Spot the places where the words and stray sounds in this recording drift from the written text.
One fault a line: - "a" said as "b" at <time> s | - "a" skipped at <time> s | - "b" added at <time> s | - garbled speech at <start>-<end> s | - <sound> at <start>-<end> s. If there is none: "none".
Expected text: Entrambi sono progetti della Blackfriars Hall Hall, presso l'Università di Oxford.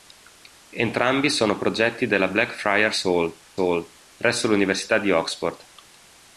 none